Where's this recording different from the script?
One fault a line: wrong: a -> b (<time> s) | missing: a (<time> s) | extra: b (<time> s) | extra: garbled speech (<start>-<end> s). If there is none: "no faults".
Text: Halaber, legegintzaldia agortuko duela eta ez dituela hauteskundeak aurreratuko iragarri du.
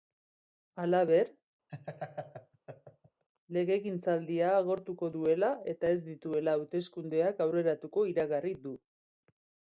no faults